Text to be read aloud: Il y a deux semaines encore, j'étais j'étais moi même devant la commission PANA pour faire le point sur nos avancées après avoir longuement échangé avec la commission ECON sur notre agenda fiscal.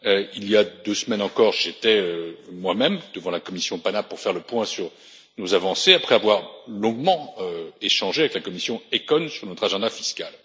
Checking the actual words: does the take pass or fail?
fail